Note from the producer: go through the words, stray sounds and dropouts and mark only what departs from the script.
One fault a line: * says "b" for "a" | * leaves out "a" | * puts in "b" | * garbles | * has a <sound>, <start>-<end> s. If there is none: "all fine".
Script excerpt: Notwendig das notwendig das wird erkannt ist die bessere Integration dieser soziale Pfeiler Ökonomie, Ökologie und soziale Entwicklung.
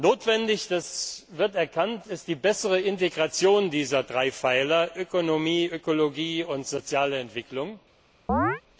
* leaves out "notwendig das"
* says "drei" for "soziale"
* has a chirp, 8.3-8.6 s